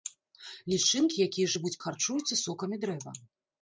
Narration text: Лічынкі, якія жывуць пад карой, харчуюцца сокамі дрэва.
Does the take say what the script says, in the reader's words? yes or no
no